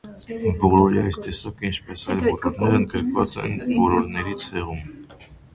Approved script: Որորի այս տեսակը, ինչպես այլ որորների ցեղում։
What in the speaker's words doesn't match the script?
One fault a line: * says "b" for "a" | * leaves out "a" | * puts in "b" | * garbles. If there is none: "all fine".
* puts in "որորներ ընդգրկված են"